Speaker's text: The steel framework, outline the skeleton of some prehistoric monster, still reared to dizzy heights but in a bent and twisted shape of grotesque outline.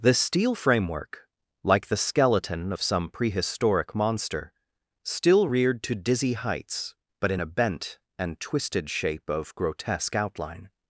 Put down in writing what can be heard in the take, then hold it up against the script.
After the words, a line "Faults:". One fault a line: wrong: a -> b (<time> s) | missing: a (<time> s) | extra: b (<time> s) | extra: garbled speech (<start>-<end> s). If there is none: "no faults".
The steel framework, like the skeleton of some prehistoric monster, still reared to dizzy heights but in a bent and twisted shape of grotesque outline.
Faults:
wrong: outline -> like (1.6 s)